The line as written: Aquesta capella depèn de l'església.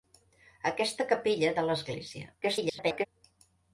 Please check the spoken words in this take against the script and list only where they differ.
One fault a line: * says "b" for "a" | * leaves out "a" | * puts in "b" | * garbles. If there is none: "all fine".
* leaves out "depèn"
* garbles